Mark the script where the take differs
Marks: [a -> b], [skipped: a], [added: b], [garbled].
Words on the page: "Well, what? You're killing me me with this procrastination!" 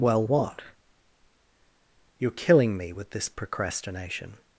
"Well, what? You're killing me [skipped: me] with this procrastination!"